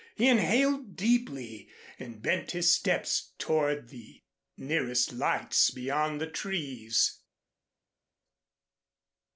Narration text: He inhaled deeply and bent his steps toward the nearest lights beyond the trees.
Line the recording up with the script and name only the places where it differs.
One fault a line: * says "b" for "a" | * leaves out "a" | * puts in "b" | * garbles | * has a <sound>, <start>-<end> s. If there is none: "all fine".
all fine